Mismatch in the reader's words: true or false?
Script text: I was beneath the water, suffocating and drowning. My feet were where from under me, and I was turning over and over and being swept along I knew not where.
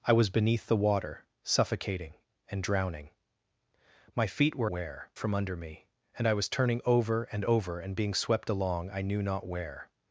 false